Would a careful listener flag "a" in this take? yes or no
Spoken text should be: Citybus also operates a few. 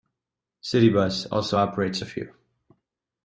no